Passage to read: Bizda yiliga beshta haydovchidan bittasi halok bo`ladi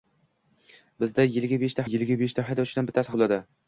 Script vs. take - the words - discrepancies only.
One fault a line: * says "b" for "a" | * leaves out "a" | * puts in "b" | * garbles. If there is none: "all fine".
* puts in "yiliga beshta"
* leaves out "halok"